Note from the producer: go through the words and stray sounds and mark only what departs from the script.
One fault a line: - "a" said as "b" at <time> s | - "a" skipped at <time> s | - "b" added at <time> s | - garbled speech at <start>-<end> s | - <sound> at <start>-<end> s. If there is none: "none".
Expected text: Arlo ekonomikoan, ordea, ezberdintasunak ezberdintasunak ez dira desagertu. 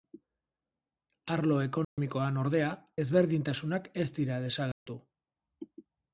- dropout at 1.8-2.0 s
- "ezberdintasunak" skipped at 3.9 s
- dropout at 4.7-4.9 s